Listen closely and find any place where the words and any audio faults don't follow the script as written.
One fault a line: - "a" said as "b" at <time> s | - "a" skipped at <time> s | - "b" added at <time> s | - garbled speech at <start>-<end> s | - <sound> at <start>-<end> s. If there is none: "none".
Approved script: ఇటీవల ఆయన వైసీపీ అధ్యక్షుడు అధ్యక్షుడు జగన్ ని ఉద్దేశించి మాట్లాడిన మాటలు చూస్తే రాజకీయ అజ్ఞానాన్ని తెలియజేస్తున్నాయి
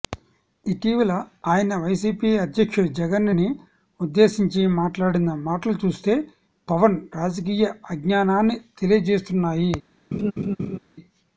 - "అధ్యక్షుడు" skipped at 2.9 s
- "పవన్" added at 6.7 s
- laugh at 10.1-10.8 s